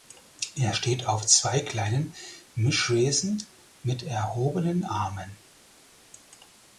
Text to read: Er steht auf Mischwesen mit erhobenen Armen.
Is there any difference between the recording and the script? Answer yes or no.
yes